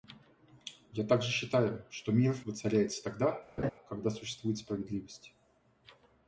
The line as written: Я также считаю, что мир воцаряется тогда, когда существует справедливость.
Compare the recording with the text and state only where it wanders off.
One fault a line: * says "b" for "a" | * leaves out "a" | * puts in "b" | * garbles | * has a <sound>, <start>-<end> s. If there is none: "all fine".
* has a laugh, 3.6-3.7 s